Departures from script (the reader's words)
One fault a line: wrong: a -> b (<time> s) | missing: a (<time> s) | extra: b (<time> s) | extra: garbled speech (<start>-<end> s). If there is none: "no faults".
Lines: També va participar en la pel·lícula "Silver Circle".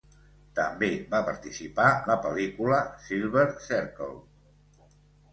missing: en (1.9 s)